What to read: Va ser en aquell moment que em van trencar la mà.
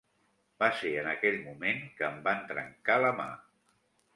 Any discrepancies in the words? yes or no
no